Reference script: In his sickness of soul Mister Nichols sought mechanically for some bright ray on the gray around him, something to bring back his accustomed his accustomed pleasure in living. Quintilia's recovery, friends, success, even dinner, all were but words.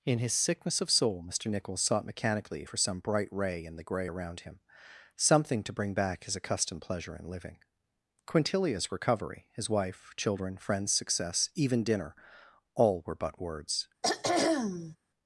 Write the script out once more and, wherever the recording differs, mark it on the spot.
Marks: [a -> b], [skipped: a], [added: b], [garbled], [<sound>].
In his sickness of soul Mister Nichols sought mechanically for some bright ray [on -> in] the gray around him, something to bring back his accustomed [skipped: his accustomed] pleasure in living. Quintilia's recovery, [added: his wife children] friends, success, even dinner, all were but words. [throat clearing]